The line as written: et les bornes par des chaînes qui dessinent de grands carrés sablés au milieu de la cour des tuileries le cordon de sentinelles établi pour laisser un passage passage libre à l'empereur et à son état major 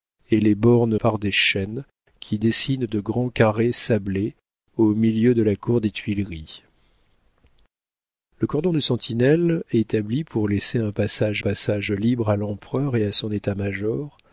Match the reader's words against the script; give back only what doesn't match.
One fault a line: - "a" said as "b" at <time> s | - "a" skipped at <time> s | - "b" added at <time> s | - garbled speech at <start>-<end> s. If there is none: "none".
none